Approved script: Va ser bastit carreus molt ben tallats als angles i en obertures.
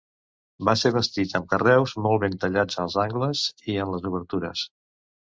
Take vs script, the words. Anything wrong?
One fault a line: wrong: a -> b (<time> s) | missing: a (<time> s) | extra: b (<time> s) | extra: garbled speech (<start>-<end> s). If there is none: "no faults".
extra: amb (1.4 s)
extra: les (4.0 s)